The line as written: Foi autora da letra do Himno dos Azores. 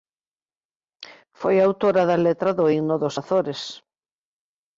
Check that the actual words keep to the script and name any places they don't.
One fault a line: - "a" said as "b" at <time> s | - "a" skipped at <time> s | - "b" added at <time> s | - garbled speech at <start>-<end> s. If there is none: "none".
none